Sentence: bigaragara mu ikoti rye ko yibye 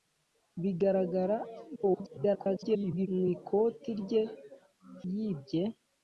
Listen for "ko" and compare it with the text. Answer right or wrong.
wrong